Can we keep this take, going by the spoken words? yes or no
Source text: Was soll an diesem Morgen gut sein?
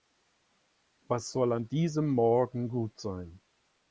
yes